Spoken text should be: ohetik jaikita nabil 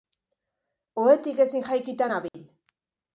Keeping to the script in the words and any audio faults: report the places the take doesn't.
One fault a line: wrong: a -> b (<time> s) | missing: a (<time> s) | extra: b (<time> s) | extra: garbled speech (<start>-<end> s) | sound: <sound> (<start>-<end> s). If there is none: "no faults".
extra: ezin (1.4 s)
sound: dropout (2.3-2.3 s)